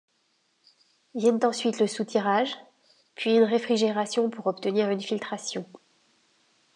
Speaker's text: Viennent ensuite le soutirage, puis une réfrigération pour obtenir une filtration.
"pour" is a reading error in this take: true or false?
false